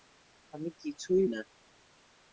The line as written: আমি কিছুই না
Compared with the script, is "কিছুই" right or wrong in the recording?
right